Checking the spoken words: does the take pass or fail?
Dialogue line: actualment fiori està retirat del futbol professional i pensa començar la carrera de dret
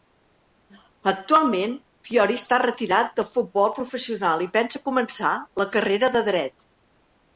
pass